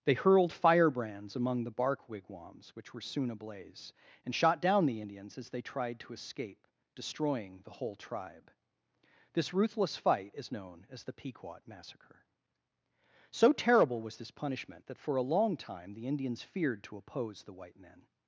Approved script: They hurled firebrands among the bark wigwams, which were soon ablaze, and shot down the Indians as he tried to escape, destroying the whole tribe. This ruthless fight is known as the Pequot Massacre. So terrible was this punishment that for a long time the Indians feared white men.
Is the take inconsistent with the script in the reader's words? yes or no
yes